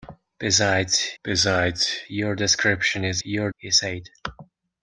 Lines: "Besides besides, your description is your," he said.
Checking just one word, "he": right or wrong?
right